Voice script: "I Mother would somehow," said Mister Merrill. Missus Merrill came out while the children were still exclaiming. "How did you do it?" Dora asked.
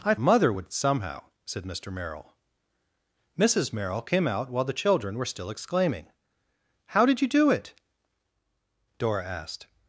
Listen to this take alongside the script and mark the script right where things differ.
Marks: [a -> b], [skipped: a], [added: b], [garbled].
"I Mother would somehow," said Mister Merrill. Missus Merrill came out while the children were still exclaiming. "How did you do it?" Dora asked.